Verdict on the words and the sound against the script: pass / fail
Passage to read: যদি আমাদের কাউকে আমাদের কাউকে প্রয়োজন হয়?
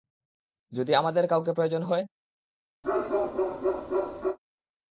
fail